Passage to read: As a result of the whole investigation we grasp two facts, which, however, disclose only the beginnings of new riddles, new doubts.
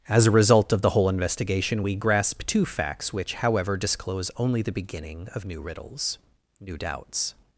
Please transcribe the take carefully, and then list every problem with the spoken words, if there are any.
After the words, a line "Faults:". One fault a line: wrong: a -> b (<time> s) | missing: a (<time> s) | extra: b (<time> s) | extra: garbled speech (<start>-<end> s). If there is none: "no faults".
As a result of the whole investigation we grasp two facts, which, however, disclose only the beginning of new riddles, new doubts.
Faults:
wrong: beginnings -> beginning (4.7 s)